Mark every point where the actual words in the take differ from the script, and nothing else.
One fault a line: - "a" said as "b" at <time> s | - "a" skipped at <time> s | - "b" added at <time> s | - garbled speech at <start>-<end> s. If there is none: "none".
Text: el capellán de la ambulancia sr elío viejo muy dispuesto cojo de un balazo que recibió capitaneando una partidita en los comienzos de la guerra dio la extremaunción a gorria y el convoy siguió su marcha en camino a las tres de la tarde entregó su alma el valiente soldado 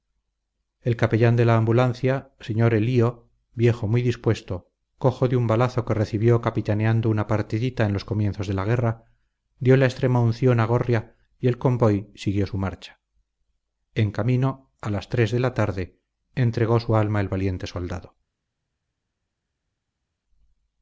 none